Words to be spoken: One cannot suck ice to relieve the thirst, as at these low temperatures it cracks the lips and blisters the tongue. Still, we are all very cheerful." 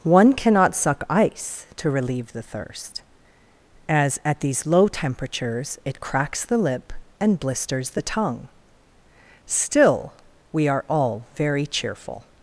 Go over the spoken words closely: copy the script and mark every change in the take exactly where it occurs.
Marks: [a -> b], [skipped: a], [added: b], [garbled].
One cannot suck ice to relieve the thirst, as at these low temperatures it cracks the [lips -> lip] and blisters the tongue. Still, we are all very cheerful."